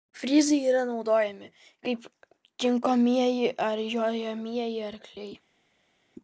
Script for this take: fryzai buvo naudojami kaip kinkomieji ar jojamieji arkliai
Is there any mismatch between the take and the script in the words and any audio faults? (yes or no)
yes